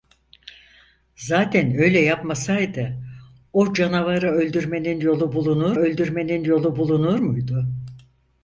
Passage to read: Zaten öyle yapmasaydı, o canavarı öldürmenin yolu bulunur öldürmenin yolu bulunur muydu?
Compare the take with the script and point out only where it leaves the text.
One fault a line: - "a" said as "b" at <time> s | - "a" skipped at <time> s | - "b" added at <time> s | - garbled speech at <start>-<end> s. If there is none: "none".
none